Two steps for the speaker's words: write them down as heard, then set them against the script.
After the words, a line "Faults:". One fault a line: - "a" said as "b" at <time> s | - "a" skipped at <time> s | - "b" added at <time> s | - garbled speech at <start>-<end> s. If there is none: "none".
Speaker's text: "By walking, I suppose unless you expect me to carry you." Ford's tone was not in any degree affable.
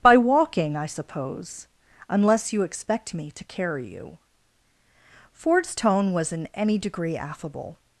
"By walking, I suppose unless you expect me to carry you." Ford's tone was in any degree affable.
Faults:
- "not" skipped at 6.3 s